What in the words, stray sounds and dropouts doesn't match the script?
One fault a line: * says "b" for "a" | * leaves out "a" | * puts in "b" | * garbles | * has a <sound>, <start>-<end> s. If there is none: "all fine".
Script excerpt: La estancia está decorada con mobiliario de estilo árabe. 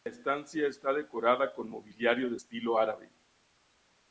all fine